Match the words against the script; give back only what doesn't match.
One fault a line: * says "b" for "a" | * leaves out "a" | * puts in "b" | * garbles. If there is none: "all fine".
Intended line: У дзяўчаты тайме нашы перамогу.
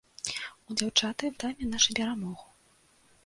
all fine